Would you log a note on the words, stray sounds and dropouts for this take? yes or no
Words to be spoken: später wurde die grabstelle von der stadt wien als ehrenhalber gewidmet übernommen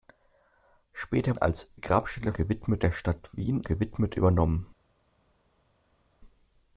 yes